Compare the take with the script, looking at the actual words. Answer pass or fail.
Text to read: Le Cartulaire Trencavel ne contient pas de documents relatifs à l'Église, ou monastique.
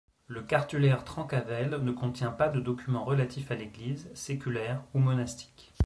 fail